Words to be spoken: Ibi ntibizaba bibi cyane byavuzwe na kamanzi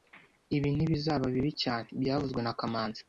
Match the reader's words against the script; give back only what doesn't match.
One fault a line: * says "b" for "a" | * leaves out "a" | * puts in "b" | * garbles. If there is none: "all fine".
all fine